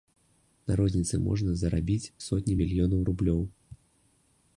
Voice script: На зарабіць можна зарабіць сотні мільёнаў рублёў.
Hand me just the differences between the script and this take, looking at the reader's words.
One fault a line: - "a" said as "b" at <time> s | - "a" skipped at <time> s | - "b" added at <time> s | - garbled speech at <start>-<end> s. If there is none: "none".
- "зарабіць" said as "розніцы" at 0.8 s